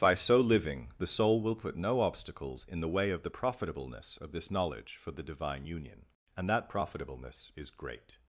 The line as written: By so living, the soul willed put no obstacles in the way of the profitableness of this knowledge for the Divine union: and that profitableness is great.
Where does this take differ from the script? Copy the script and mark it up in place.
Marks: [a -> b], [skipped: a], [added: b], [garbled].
By so living, the soul [willed -> will] put no obstacles in the way of the profitableness of this knowledge for the Divine union: and that profitableness is great.